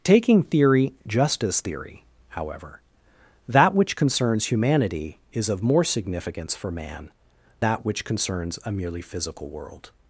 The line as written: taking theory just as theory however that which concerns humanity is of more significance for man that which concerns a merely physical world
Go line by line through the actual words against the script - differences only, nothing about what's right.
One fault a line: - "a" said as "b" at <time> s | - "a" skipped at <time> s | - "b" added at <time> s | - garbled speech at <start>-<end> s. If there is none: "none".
none